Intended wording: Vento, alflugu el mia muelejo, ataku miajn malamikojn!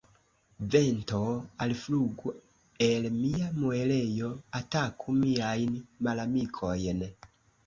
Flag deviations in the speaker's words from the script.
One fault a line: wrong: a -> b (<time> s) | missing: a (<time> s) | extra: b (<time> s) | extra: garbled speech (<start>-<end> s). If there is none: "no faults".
no faults